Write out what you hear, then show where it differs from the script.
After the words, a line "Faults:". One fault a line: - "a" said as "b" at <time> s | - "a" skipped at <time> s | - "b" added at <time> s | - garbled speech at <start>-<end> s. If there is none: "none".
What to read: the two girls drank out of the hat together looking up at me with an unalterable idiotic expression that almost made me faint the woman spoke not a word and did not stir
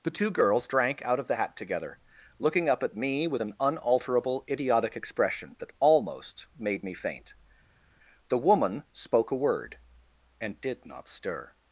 the two girls drank out of the hat together looking up at me with an unalterable idiotic expression that almost made me faint the woman spoke a word and did not stir
Faults:
- "not" skipped at 9.3 s